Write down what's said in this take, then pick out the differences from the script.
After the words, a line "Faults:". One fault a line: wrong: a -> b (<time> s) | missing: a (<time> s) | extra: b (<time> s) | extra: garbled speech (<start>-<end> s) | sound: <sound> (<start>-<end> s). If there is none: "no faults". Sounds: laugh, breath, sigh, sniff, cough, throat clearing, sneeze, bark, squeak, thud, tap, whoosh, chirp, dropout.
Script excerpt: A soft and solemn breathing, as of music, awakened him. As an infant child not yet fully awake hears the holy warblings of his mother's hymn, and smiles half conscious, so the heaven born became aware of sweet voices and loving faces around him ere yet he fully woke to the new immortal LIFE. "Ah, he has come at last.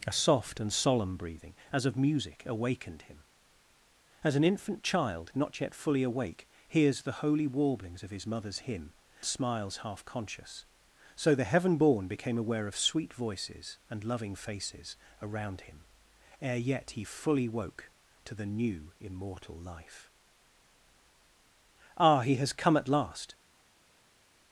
A soft and solemn breathing, as of music, awakened him. As an infant child not yet fully awake hears the holy warblings of his mother's hymn, smiles half conscious, so the heaven born became aware of sweet voices and loving faces around him ere yet he fully woke to the new immortal LIFE. "Ah, he has come at last.
Faults:
missing: and (8.9 s)